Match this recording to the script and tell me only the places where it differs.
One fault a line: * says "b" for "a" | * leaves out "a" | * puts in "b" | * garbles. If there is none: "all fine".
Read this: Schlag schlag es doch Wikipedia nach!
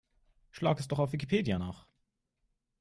* leaves out "schlag"
* puts in "auf"